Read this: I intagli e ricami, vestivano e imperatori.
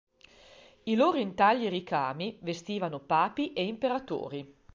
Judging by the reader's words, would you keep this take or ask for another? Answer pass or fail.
fail